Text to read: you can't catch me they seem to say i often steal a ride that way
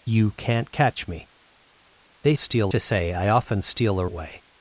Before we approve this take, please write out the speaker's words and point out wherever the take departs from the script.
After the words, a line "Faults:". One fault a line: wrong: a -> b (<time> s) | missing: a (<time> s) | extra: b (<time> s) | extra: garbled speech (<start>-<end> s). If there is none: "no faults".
you can't catch me they steal to say i often steal a way
Faults:
wrong: seem -> steal (2.4 s)
missing: ride that (4.1 s)